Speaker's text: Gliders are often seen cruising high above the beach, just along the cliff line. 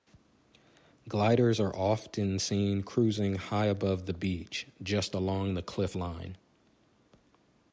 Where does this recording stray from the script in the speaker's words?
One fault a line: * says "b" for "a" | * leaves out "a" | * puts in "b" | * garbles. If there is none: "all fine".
all fine